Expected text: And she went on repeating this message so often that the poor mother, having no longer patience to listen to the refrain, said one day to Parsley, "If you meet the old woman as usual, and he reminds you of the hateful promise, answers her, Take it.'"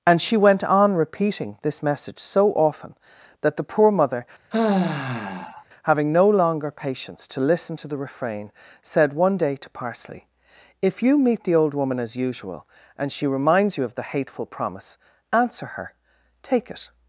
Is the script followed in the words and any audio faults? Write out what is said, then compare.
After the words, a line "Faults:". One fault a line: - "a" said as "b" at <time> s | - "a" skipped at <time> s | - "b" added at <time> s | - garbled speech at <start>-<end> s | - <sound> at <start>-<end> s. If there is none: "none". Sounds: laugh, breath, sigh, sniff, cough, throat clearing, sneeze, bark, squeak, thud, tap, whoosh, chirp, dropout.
And she went on repeating this message so often that the poor mother, having no longer patience to listen to the refrain, said one day to Parsley, "If you meet the old woman as usual, and she reminds you of the hateful promise, answer her, Take it.'"
Faults:
- sigh at 4.5-5.6 s
- "he" said as "she" at 13.1 s
- "answers" said as "answer" at 15.3 s